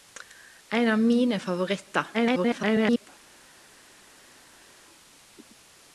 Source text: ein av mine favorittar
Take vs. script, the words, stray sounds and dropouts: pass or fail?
fail